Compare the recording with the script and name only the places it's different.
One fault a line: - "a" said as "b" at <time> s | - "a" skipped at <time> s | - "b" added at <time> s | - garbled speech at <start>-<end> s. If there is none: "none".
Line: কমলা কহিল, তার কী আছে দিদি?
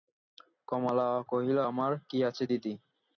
- "তার" said as "আমার" at 1.7 s